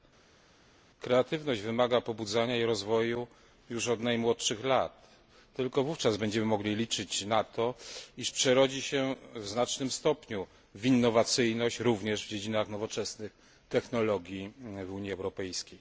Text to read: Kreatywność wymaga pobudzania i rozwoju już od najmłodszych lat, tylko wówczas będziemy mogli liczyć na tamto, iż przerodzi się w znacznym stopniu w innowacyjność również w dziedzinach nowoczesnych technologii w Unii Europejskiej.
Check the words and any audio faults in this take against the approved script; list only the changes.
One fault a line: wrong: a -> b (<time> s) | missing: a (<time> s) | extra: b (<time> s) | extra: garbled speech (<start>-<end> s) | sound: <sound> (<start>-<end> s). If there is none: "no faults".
wrong: tamto -> to (7.4 s)